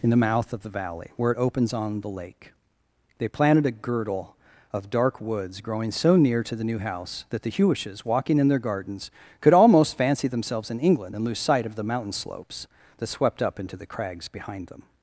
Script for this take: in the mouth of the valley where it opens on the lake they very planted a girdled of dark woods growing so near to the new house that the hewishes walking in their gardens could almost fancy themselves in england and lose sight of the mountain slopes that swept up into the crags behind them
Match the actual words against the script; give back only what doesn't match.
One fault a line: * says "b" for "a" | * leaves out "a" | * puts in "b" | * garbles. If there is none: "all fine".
* leaves out "very"
* says "girdle" for "girdled"